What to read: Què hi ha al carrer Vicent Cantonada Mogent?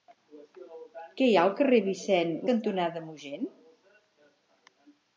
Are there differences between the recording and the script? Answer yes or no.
no